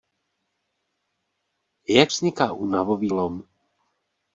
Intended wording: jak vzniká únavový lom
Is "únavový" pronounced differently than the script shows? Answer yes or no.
no